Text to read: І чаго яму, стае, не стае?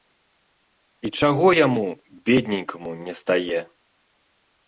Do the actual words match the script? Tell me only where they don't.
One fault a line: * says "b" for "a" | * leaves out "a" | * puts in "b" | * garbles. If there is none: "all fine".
* says "бедненькаму" for "стае"